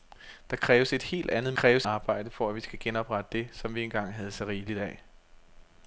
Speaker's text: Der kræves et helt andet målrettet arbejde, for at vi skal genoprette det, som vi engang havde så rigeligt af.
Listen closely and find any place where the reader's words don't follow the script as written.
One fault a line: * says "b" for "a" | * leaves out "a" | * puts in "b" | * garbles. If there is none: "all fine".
* says "kræves" for "målrettet"